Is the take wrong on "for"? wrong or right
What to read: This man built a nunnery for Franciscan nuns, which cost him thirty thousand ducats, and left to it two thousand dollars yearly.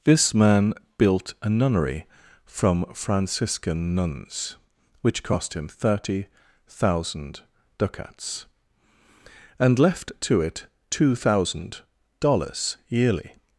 wrong